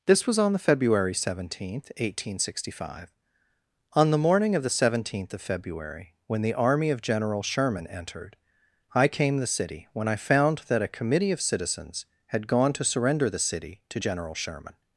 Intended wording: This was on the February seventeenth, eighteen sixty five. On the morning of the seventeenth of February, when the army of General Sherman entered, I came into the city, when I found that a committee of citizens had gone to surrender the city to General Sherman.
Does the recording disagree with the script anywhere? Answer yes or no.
yes